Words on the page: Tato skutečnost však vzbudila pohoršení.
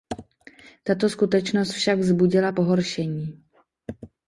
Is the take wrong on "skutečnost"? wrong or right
right